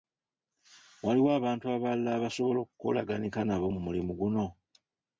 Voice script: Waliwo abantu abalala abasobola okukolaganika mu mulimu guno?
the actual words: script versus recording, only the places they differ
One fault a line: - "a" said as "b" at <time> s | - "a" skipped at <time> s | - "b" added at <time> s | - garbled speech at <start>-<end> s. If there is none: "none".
- "nabo" added at 3.4 s